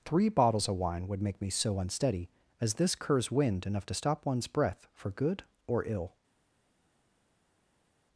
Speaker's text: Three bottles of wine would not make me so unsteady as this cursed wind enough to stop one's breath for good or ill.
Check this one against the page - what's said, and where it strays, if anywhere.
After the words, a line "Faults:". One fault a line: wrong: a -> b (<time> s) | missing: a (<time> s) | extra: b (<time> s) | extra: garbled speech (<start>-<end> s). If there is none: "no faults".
Three bottles of wine would make me so unsteady as this curs wind enough to stop one's breath for good or ill.
Faults:
missing: not (1.2 s)
wrong: cursed -> curs (3.0 s)